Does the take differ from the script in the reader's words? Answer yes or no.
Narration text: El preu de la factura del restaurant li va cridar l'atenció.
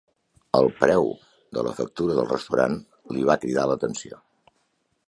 no